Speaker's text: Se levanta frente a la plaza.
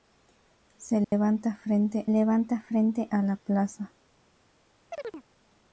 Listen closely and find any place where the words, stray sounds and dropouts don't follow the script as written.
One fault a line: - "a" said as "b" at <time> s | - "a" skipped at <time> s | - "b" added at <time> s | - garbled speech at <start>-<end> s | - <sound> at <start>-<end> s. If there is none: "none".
- dropout at 1.0-1.1 s
- "levanta frente" added at 2.1 s
- chirp at 4.9-5.2 s